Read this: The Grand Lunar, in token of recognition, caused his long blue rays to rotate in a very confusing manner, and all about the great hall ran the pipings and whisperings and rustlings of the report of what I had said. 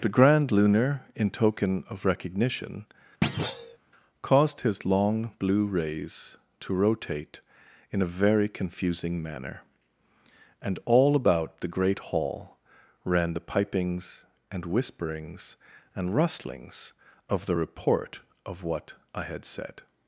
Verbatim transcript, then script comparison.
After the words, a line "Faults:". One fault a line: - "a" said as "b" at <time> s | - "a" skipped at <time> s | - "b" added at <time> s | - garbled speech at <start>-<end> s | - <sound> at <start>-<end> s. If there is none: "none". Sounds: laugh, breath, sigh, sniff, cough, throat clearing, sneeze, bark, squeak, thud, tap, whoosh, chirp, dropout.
The Grand Lunar, in token of recognition, caused his long blue rays to rotate in a very confusing manner, and all about the great hall ran the pipings and whisperings and rustlings of the report of what I had said.
Faults:
- thud at 3.2-3.8 s